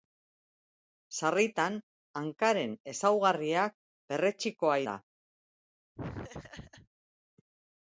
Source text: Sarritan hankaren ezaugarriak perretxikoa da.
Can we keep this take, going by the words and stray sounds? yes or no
no